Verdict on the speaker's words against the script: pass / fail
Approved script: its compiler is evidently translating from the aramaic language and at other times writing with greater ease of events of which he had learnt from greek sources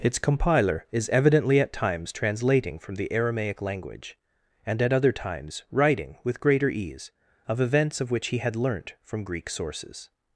fail